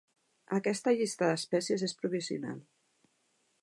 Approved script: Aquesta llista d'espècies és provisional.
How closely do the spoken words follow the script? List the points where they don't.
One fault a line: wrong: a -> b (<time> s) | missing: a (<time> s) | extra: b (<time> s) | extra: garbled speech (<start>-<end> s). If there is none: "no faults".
no faults